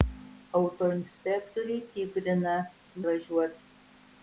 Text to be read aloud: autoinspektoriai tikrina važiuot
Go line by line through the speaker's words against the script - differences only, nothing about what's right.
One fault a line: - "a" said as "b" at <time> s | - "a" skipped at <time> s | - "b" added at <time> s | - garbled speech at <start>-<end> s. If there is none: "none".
none